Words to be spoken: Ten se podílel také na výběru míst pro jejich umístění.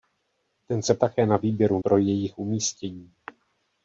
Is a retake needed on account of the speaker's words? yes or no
yes